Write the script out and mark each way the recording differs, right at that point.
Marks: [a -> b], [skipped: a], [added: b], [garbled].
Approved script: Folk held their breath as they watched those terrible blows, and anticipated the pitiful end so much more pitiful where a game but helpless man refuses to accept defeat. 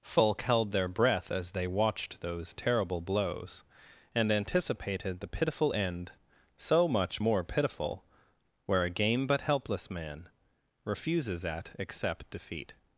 Folk held their breath as they watched those terrible blows, and anticipated the pitiful end so much more pitiful where a game but helpless man refuses [to -> at] accept defeat.